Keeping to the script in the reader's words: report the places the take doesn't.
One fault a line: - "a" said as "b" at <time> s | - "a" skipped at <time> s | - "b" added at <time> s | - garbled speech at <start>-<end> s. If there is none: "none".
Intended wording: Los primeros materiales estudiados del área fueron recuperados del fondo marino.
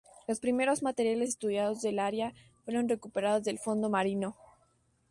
none